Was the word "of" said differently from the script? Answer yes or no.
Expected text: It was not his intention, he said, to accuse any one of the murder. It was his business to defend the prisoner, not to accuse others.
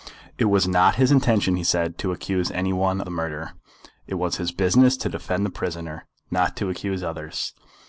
yes